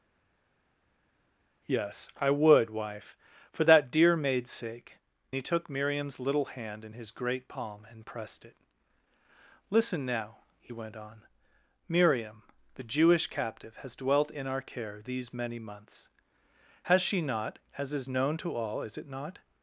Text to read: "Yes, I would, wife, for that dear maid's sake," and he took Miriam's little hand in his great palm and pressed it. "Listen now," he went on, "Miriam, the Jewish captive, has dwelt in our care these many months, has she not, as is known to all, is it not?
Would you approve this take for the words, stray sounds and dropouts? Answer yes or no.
no